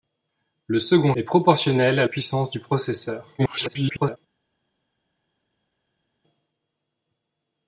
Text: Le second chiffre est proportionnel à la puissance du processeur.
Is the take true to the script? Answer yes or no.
no